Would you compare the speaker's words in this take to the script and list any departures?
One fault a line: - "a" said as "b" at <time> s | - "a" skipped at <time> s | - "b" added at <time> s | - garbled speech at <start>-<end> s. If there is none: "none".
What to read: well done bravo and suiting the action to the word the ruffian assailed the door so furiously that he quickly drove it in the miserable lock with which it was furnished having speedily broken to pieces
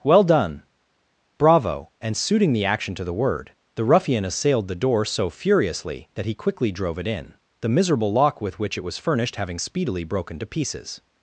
none